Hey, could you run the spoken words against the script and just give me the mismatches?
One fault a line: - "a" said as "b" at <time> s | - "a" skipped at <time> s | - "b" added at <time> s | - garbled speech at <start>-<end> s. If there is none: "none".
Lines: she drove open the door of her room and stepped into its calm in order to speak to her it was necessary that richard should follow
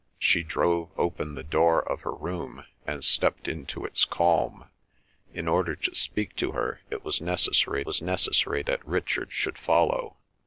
- "was necessary" added at 7.8 s